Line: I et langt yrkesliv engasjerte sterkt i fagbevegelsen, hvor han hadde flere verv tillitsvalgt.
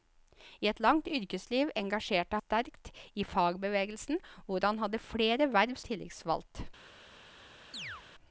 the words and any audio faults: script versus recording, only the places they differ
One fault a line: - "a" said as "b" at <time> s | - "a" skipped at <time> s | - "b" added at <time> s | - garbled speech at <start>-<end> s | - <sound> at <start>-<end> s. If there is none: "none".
- chirp at 7.7-8.0 s